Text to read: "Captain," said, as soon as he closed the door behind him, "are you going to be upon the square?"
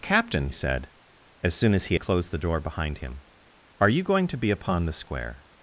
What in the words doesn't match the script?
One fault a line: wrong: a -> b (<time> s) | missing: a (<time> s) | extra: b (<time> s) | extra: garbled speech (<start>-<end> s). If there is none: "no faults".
no faults